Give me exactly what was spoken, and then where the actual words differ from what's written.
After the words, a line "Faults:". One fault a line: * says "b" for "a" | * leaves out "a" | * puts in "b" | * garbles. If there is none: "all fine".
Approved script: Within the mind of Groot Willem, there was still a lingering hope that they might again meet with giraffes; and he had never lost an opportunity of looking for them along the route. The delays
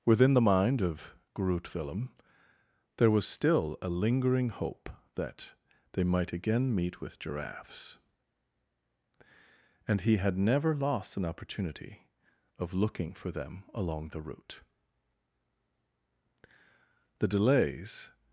Within the mind of Groot Willem, there was still a lingering hope that they might again meet with giraffes; and he had never lost an opportunity of looking for them along the route. The delays
Faults:
all fine